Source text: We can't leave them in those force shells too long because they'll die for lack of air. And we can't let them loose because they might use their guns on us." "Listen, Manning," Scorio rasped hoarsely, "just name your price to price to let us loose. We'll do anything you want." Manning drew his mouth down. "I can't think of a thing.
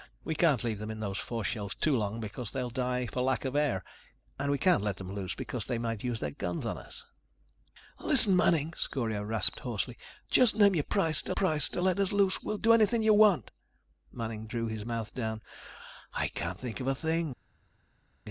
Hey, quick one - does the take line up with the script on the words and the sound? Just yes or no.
yes